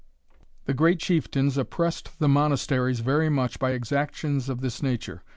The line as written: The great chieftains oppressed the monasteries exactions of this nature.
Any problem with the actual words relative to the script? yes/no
yes